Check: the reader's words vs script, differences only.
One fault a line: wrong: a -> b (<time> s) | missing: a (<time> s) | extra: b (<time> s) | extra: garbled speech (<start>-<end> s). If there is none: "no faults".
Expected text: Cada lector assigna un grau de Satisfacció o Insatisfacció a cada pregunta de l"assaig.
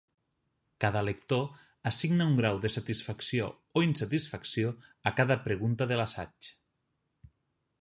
no faults